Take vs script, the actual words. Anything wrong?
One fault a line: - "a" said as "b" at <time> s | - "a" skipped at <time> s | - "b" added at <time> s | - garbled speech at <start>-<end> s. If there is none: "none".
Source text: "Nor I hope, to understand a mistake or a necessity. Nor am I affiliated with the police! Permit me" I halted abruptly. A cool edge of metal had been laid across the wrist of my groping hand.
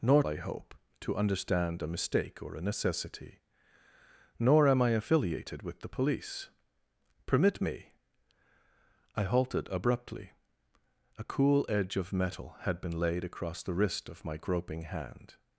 none